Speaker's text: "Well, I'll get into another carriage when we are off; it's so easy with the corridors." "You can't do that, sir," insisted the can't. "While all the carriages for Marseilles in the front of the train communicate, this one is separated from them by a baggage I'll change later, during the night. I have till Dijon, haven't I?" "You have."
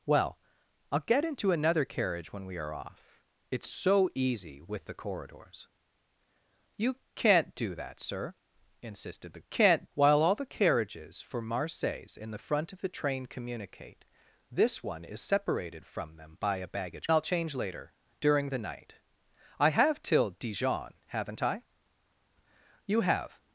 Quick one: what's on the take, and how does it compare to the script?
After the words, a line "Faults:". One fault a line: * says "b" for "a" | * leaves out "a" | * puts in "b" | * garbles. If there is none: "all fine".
"Well, I'll get into another carriage when we are off; it's so easy with the corridors." "You can't do that, sir," insisted the can't. "While all the carriages for Marseilles in the front of the train communicate, this one is separated from them by a baggage I'll change later, during the night. I have till Dijon, haven't I?" "You have."
Faults:
all fine